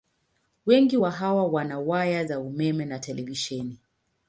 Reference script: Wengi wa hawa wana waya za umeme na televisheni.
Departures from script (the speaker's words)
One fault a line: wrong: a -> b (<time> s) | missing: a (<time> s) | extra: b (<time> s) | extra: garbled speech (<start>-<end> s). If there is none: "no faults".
no faults